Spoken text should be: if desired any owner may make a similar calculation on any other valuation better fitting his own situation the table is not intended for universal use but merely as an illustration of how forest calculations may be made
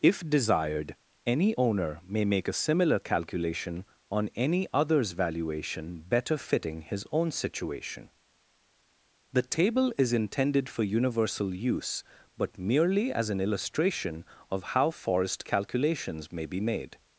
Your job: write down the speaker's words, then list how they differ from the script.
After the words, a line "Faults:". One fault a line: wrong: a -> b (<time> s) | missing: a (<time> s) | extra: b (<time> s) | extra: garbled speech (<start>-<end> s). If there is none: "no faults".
if desired any owner may make a similar calculation on any others valuation better fitting his own situation the table is intended for universal use but merely as an illustration of how forest calculations may be made
Faults:
wrong: other -> others (4.7 s)
missing: not (10.1 s)